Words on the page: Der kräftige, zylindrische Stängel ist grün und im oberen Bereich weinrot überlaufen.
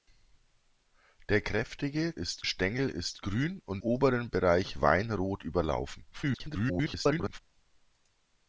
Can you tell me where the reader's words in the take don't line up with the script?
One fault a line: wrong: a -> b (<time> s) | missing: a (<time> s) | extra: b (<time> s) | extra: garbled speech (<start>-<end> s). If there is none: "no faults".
wrong: zylindrische -> ist (2.1 s)
missing: im (3.8 s)
extra: garbled speech (6.1-7.4 s)